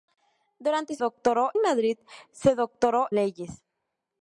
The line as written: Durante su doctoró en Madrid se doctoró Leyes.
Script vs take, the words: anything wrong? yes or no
no